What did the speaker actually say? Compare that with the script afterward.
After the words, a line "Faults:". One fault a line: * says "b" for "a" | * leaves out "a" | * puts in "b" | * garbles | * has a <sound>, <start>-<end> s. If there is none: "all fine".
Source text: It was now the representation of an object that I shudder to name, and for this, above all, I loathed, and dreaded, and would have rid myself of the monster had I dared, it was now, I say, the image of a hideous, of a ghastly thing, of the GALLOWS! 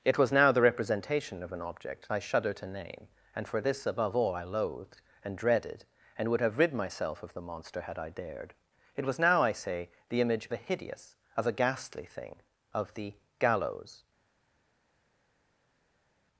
It was now the representation of an object I shudder to name, and for this, above all, I loathed, and dreaded, and would have rid myself of the monster had I dared, it was now, I say, the image a hideous, of a ghastly thing, of the GALLOWS!
Faults:
* leaves out "that"
* leaves out "of"